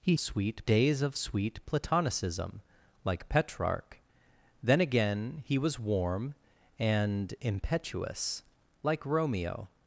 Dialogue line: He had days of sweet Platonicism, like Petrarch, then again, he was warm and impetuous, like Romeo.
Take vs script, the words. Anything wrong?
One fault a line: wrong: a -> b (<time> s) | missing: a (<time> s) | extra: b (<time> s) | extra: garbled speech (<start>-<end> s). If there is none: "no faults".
wrong: had -> sweet (0.2 s)